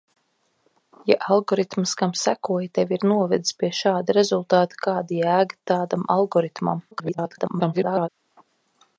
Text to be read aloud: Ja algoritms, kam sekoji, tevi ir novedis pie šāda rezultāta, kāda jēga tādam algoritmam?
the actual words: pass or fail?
fail